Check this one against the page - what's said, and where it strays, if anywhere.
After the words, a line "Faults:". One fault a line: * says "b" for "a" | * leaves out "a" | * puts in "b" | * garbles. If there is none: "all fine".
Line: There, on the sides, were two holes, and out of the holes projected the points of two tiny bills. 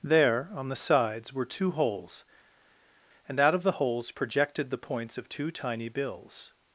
There, on the sides, were two holes, and out of the holes projected the points of two tiny bills.
Faults:
all fine